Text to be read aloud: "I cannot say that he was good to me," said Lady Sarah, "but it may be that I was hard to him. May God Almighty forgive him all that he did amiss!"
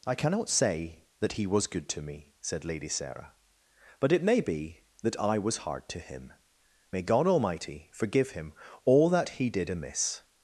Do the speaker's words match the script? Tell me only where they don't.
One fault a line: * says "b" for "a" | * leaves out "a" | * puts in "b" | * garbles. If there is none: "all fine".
all fine